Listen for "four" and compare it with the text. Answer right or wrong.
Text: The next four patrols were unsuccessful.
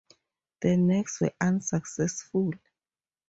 wrong